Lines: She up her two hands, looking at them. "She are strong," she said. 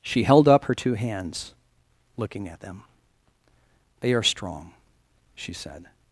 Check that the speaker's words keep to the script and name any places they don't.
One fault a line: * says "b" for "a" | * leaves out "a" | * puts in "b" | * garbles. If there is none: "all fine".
* puts in "held"
* says "They" for "She"